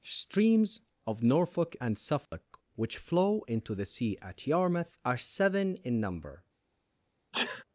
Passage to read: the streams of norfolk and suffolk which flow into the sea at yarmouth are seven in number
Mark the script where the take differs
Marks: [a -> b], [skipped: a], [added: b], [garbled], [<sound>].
[skipped: the] streams of norfolk and suffolk [dropout] which flow into the sea at yarmouth are seven in number [sneeze]